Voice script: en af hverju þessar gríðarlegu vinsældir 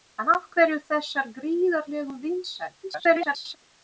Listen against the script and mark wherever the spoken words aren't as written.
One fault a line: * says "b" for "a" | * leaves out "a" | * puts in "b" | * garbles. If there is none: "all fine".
* garbles